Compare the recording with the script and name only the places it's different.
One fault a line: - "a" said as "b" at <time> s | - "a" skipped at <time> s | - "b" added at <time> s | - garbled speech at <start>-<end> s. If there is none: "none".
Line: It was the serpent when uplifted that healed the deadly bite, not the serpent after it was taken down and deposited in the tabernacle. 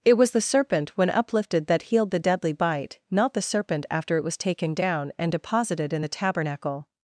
none